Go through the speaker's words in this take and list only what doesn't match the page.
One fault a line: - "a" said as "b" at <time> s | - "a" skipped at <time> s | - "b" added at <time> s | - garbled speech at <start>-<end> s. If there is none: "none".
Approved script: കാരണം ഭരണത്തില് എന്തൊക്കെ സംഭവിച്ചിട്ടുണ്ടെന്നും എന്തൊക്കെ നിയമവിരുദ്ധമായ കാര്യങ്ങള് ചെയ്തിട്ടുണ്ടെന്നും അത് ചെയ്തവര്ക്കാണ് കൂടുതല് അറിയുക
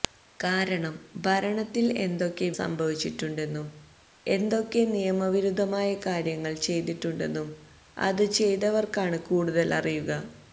none